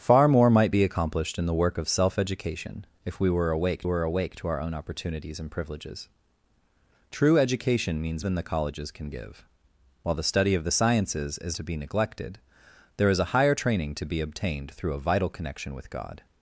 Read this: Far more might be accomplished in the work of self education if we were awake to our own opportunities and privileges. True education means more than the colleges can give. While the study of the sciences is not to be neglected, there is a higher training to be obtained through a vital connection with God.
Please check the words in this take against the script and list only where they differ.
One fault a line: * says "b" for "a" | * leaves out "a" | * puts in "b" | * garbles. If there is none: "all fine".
* puts in "were awake"
* leaves out "more"
* leaves out "not"